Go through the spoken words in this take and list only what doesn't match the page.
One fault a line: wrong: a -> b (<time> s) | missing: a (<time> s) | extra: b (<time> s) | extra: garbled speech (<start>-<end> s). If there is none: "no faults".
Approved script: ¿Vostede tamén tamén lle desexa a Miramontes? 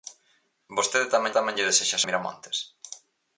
no faults